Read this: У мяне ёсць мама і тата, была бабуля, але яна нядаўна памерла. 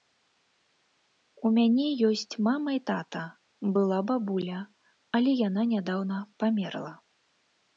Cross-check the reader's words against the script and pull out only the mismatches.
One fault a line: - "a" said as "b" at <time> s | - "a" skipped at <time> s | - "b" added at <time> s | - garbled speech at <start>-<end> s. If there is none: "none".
none